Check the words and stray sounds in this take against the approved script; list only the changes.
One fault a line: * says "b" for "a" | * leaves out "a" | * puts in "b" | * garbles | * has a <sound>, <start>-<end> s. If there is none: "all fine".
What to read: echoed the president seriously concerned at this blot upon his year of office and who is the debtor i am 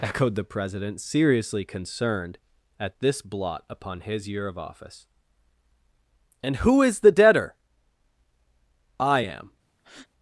* has a breath, 9.8-10.1 s